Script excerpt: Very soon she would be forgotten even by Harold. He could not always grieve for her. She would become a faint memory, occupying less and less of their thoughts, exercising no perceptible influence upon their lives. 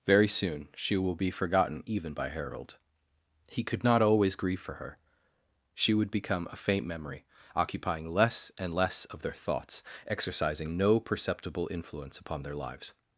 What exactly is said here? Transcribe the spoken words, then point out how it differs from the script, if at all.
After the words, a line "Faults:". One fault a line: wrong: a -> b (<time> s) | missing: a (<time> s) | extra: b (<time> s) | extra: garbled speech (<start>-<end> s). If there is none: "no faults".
Very soon she will be forgotten even by Harold. He could not always grieve for her. She would become a faint memory, occupying less and less of their thoughts, exercising no perceptible influence upon their lives.
Faults:
wrong: would -> will (1.0 s)